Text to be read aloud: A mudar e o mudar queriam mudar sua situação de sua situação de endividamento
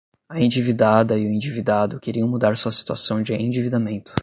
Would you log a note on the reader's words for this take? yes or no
yes